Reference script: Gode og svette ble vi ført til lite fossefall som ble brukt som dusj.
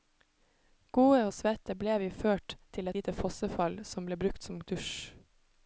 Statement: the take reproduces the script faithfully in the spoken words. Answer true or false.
true